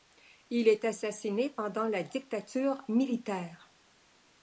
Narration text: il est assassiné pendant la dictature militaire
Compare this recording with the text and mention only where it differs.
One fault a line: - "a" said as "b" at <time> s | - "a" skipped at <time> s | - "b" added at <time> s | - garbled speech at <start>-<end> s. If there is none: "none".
none